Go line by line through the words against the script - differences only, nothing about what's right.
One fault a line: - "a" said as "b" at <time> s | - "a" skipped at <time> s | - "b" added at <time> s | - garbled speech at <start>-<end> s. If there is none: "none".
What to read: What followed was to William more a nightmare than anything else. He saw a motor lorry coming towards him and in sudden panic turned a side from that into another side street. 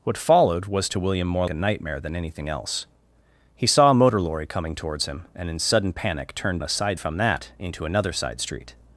none